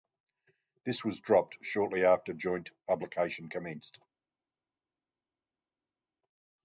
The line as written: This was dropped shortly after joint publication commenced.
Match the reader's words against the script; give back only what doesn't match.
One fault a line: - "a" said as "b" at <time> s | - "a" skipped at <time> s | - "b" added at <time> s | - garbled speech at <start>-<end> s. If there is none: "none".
none